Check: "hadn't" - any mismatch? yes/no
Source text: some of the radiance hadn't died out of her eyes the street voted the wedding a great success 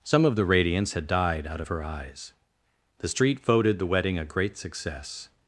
yes